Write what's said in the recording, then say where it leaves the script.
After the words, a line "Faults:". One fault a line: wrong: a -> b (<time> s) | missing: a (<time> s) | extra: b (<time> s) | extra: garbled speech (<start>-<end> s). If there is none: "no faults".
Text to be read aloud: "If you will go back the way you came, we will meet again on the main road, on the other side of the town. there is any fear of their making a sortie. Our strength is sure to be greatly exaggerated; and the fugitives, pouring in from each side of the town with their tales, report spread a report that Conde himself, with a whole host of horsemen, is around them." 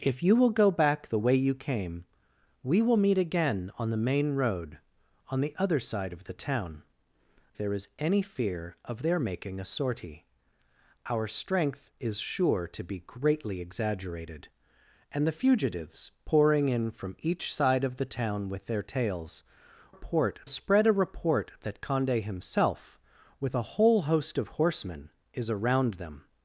"If you will go back the way you came, we will meet again on the main road, on the other side of the town. there is any fear of their making a sortie. Our strength is sure to be greatly exaggerated; and the fugitives, pouring in from each side of the town with their tales, report spread a report that Conde himself, with a whole host of horsemen, is around them."
Faults:
no faults